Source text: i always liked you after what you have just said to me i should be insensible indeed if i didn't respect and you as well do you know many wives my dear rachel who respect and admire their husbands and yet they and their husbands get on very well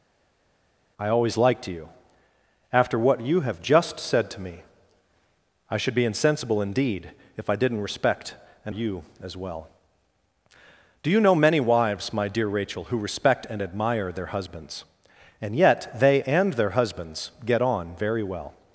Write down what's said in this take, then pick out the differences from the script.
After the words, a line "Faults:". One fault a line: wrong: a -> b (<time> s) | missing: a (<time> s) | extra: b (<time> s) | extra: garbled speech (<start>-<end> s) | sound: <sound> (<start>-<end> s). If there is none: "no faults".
i always liked you after what you have just said to me i should be insensible indeed if i didn't respect and you as well do you know many wives my dear rachel who respect and admire their husbands and yet they and their husbands get on very well
Faults:
no faults